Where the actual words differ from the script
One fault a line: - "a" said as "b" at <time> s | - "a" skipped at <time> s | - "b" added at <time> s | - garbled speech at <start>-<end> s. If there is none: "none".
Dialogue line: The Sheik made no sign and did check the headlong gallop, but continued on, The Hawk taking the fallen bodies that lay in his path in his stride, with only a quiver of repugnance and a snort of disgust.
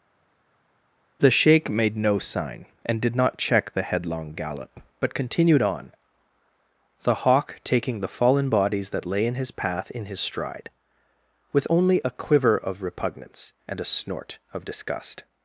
- "not" added at 3.1 s